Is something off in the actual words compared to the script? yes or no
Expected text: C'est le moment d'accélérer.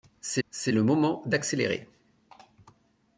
yes